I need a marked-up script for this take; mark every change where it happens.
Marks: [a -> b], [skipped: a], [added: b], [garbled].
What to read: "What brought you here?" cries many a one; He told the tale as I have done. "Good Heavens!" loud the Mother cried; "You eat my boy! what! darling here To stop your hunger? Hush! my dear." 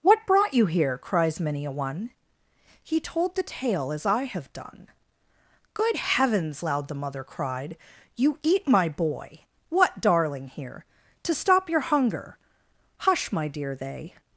"What brought you here?" cries many a one; He told the tale as I have done. "Good Heavens!" loud the Mother cried; "You eat my boy! what! darling here To stop your hunger? Hush! my dear." [added: They]